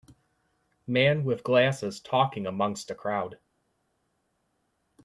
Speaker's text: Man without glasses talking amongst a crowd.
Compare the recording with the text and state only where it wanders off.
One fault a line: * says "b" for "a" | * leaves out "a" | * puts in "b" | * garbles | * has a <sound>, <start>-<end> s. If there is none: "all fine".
* says "with" for "without"